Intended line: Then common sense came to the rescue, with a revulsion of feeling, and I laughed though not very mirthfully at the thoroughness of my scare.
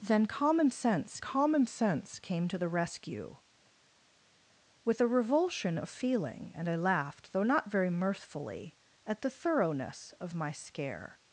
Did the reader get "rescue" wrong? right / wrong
right